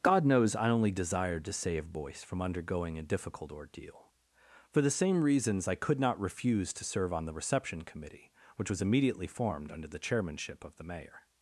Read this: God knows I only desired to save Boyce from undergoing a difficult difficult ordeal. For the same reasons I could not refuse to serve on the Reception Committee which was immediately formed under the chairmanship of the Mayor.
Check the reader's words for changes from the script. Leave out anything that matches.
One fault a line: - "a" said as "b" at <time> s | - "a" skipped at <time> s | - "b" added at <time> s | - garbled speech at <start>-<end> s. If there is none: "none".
- "difficult" skipped at 3.5 s